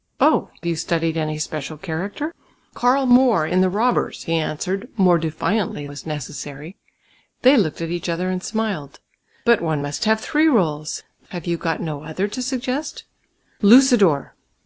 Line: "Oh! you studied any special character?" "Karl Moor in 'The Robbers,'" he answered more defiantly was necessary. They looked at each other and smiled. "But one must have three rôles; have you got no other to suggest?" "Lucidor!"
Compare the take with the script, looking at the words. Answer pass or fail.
pass